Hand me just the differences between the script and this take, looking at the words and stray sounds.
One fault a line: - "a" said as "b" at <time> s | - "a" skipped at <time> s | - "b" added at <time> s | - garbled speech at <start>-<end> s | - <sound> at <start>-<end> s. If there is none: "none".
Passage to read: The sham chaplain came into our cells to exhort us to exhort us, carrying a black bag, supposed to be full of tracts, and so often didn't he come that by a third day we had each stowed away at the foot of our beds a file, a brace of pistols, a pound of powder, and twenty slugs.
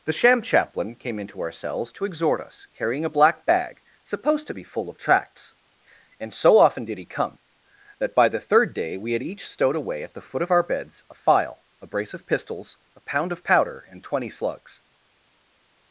- "to exhort us" skipped at 2.7 s
- "didn't" said as "did" at 6.8 s
- "a" said as "the" at 8.3 s